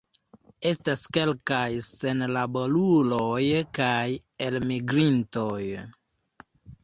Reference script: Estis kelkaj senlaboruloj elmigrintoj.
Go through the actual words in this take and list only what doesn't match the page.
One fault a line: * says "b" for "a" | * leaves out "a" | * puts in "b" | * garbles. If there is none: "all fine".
* says "Estas" for "Estis"
* puts in "kaj"